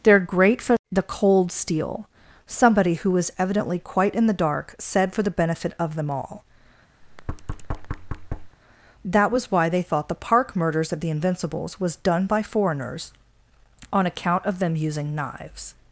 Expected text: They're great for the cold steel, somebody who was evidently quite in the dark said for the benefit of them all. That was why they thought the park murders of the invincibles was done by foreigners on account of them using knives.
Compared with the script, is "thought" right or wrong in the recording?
right